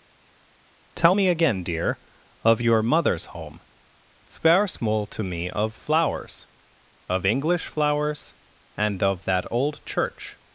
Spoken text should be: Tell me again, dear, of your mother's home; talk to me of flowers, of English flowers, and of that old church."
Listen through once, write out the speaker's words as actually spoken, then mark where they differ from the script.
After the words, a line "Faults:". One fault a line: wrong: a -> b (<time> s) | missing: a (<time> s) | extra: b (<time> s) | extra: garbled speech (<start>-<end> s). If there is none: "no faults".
Tell me again, dear, of your mother's home; spare small to me of flowers, of English flowers, and of that old church."
Faults:
wrong: talk -> spare small (4.3 s)